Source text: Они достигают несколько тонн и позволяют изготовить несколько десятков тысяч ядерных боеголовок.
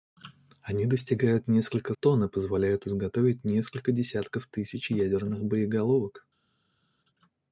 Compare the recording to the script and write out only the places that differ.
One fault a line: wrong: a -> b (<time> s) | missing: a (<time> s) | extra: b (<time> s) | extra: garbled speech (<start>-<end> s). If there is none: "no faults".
no faults